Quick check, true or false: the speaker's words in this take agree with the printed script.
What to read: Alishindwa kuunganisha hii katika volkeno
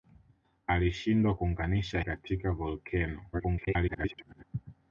false